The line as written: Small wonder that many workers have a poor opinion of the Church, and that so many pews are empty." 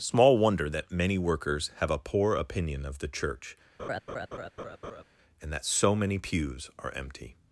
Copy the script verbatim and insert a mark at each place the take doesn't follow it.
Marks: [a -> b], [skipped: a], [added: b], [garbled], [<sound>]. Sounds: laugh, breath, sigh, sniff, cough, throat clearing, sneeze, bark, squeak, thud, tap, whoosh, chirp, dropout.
Small wonder that many workers have a poor opinion of the Church, [laugh] and that so many pews are empty."